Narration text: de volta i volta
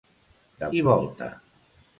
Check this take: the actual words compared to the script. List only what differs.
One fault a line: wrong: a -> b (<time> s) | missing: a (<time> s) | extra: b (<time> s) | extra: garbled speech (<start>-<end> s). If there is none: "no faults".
missing: volta (0.7 s)